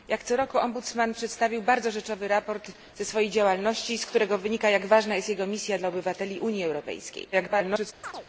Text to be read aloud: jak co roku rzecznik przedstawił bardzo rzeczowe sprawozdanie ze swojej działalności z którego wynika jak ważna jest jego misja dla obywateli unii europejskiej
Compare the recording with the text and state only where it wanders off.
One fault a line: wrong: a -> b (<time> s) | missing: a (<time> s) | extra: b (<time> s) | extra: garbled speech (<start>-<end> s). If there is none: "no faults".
extra: garbled speech (7.3-7.9 s)